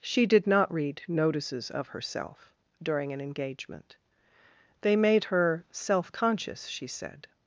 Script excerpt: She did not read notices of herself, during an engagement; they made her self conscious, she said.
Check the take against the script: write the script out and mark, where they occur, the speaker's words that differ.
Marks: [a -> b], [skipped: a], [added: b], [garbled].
She did not read notices of herself, during an engagement; they made her self conscious, she said.